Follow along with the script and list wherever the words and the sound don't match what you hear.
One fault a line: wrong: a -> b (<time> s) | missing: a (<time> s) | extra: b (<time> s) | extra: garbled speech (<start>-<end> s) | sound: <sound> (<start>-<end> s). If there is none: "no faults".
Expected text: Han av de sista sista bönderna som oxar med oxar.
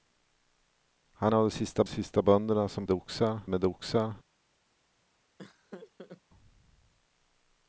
sound: laugh (5.4-6.2 s)